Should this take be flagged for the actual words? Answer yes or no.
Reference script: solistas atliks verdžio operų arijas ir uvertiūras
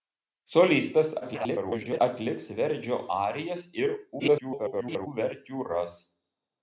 yes